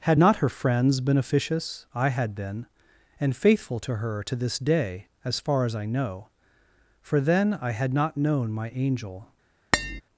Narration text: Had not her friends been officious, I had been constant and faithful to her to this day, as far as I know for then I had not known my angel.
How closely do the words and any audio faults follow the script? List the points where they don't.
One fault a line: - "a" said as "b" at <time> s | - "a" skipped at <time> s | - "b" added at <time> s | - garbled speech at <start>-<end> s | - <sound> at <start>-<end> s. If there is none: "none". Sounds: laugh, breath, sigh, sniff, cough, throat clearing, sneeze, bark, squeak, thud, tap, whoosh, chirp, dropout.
- "constant" skipped at 2.7 s
- tap at 9.7-10.0 s